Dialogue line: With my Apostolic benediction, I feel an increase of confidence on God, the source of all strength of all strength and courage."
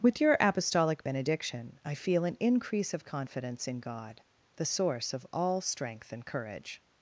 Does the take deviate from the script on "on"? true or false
true